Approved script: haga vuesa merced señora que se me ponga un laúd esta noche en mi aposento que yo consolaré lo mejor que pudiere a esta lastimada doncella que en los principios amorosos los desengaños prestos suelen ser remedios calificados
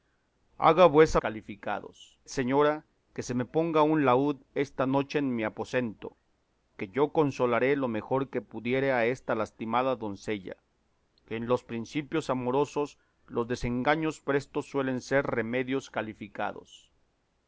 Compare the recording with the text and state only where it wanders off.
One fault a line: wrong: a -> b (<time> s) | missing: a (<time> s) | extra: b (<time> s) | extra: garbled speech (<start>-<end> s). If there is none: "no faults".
wrong: merced -> calificados (1.2 s)